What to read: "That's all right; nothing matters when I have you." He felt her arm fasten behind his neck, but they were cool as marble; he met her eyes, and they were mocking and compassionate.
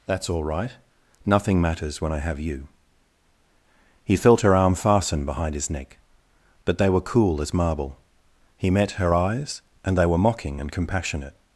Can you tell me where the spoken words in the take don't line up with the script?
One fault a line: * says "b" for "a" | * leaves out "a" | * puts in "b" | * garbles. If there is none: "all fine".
all fine